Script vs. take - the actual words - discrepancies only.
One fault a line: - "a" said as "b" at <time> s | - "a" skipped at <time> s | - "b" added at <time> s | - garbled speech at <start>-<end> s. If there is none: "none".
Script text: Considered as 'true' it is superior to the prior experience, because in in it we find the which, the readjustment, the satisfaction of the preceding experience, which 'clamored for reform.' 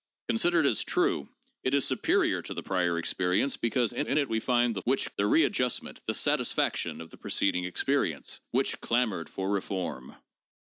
none